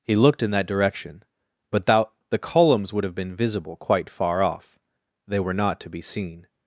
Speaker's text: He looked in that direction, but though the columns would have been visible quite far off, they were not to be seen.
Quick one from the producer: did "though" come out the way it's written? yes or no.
no